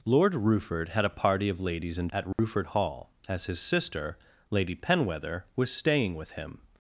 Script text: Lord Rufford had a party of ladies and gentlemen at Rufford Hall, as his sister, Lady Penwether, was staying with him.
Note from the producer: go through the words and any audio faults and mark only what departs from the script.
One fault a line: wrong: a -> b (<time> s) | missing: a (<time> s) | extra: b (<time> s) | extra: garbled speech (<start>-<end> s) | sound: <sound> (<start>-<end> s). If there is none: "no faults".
missing: gentlemen (2.1 s)
sound: dropout (2.3-2.4 s)